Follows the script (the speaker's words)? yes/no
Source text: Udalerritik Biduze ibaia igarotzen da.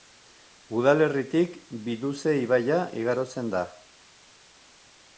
yes